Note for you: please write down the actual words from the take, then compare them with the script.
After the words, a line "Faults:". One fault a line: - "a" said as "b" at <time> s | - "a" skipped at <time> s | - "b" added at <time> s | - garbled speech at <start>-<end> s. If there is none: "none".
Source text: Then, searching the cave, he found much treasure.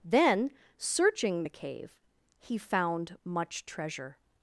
Then, searching the cave, he found much treasure.
Faults:
none